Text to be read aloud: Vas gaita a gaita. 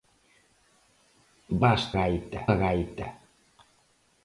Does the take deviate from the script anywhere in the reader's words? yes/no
no